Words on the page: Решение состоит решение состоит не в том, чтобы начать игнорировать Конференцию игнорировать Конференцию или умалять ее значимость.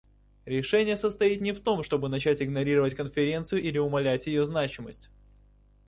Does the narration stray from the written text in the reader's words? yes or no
yes